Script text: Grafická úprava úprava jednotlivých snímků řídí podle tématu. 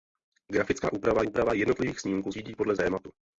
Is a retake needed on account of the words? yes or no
no